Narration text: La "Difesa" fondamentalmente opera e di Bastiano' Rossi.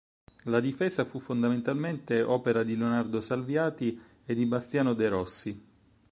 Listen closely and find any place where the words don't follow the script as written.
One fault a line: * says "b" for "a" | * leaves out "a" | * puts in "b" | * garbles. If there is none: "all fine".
* puts in "fu"
* puts in "di Leonardo Salviati"
* puts in "de"